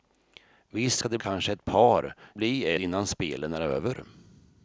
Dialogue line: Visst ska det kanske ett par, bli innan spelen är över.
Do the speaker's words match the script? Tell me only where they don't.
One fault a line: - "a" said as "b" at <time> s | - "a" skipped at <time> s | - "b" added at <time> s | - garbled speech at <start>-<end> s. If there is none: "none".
none